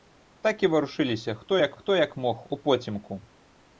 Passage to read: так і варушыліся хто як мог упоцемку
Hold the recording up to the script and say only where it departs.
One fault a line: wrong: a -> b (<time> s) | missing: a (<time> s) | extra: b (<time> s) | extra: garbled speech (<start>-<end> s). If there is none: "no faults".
extra: хто як (1.7 s)